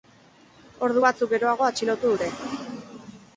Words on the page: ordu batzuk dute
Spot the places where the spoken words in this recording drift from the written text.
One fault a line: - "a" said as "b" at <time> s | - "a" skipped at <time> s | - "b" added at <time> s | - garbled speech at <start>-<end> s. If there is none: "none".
- "geroago atxilotu" added at 1.3 s